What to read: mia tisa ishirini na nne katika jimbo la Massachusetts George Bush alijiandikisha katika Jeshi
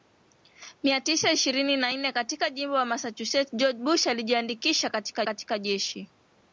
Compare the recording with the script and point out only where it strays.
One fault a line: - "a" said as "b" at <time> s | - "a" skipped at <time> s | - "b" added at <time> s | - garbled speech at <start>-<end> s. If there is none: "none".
- "katika" added at 5.2 s